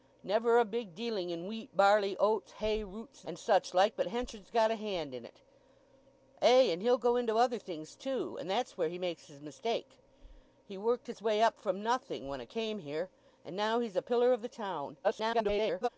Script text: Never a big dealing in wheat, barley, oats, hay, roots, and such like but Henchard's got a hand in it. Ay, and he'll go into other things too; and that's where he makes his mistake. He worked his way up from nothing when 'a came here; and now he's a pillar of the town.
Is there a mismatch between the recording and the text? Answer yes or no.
yes